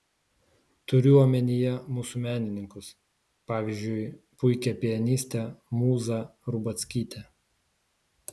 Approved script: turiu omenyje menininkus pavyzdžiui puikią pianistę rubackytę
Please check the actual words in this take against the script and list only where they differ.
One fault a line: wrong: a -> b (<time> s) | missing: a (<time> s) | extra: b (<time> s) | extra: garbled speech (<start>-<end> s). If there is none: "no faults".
extra: mūsų (2.0 s)
extra: mūzą (5.8 s)